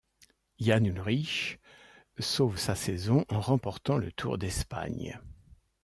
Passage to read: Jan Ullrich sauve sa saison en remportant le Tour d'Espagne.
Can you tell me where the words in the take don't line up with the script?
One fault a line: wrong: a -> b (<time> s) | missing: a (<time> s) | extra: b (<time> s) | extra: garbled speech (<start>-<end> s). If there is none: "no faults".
no faults